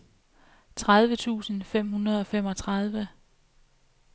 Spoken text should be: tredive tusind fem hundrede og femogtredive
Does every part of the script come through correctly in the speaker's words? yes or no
yes